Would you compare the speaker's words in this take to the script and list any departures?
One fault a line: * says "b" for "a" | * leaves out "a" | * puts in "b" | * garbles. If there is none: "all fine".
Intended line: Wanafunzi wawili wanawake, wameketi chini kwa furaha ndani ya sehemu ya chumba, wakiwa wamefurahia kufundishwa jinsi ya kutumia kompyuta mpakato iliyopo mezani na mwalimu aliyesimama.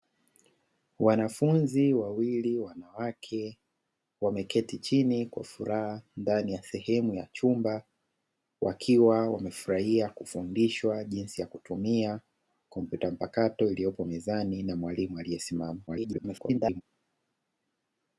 * garbles